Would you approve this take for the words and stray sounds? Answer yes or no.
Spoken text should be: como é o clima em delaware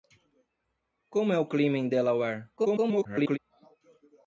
no